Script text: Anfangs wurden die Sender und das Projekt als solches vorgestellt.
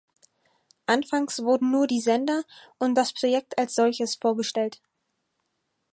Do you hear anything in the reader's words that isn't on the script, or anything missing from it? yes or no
yes